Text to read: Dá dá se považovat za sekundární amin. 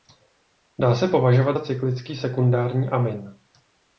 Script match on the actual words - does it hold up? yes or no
no